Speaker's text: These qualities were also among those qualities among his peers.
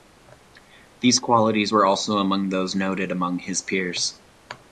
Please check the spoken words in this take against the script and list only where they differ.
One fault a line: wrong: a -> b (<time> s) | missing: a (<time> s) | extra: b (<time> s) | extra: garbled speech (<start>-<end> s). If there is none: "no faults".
wrong: qualities -> noted (2.7 s)